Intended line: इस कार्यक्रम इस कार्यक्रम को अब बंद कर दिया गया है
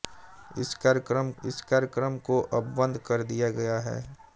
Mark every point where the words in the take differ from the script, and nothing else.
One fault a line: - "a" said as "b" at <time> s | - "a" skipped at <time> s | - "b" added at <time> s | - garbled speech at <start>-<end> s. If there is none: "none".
none